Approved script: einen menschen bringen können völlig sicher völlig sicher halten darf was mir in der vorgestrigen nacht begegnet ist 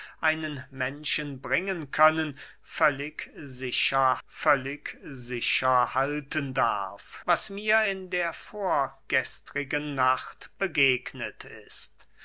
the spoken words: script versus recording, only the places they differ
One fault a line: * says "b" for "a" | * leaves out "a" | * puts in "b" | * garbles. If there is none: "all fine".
all fine